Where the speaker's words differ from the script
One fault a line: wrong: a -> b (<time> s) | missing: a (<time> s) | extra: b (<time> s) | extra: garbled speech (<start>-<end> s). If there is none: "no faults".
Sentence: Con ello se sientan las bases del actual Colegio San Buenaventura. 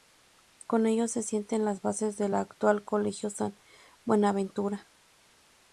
no faults